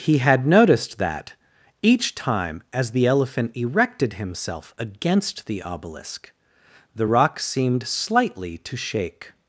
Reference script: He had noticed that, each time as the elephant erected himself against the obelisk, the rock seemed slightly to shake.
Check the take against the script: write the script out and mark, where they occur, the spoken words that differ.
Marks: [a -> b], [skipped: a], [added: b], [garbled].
He had noticed that, each time as the elephant erected himself against the obelisk, the rock seemed slightly to shake.